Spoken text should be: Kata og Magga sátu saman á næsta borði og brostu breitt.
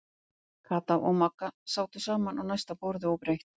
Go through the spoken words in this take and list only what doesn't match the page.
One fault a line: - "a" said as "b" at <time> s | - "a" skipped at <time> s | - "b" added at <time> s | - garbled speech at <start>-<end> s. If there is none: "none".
- "brostu" skipped at 3.2 s